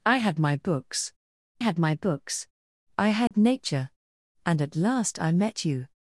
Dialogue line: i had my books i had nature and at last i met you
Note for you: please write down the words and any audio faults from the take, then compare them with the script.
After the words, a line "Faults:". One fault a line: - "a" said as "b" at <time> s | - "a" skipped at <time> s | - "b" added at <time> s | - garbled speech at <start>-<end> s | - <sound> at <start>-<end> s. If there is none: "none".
i had my books had my books i had nature and at last i met you
Faults:
- "had my books" added at 1.6 s
- dropout at 3.3-3.3 s